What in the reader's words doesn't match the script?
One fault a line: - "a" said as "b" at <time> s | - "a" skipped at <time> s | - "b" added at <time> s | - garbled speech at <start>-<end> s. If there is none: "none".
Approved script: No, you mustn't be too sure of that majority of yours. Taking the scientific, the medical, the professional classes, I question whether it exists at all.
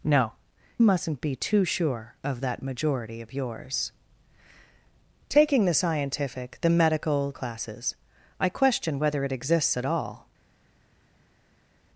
- "you" skipped at 0.3 s
- "the professional" skipped at 7.3 s